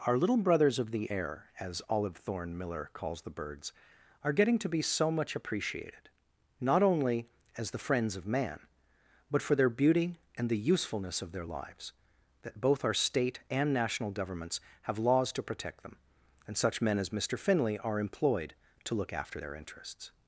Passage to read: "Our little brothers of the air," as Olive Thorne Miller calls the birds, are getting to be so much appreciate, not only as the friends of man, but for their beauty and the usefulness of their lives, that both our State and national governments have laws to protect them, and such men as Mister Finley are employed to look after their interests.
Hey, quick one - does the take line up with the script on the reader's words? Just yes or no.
no